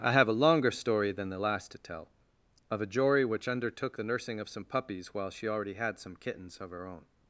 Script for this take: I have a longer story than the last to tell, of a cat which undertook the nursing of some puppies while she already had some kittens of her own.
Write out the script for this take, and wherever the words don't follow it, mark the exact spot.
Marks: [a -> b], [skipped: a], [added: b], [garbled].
I have a longer story than the last to tell, of a [cat -> jory] which undertook the nursing of some puppies while she already had some kittens of her own.